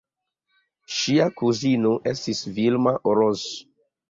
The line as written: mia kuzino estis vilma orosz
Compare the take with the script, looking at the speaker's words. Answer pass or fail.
fail